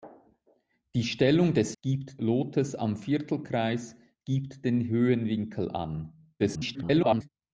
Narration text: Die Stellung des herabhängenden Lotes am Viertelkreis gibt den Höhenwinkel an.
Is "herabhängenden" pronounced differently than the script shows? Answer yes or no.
yes